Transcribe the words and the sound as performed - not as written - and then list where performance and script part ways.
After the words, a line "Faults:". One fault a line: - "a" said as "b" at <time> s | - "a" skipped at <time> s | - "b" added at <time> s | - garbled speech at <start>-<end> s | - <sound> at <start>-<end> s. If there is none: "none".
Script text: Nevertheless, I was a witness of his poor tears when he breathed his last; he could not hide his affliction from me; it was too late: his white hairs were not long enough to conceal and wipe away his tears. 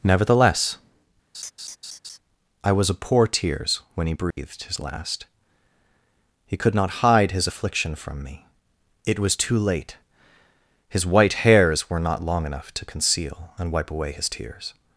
Nevertheless, I was a poor tears when he breathed his last; he could not hide his affliction from me; it was too late: his white hairs were not long enough to conceal and wipe away his tears.
Faults:
- laugh at 1.3-2.2 s
- "witness of his" skipped at 2.9 s
- dropout at 4.3-4.4 s